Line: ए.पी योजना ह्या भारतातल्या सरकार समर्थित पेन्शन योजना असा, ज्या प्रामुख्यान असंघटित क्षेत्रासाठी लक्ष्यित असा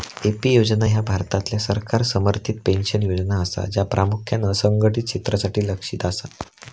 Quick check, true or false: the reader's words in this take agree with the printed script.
true